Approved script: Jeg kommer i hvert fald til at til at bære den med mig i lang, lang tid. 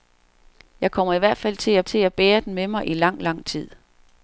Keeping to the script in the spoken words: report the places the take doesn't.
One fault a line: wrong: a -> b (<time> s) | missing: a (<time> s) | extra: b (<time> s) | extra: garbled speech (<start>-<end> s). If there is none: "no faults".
no faults